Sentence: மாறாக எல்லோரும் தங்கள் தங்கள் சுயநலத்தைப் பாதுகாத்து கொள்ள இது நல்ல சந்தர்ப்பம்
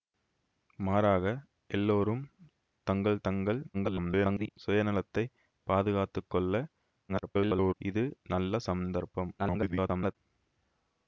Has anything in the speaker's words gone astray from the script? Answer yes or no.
yes